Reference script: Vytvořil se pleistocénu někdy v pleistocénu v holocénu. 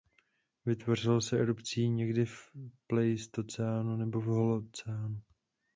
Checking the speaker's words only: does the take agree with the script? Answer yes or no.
no